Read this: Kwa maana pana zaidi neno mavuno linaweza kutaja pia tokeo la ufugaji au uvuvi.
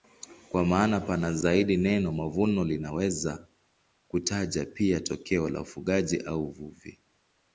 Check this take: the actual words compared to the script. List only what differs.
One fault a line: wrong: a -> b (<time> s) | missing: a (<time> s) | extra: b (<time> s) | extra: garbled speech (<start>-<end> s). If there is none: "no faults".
no faults